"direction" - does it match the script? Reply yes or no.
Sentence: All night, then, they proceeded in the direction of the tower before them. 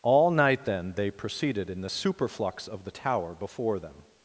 no